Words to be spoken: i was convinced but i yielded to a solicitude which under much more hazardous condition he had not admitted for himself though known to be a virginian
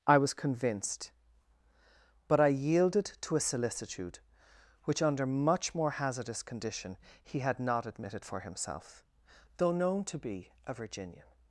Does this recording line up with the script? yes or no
yes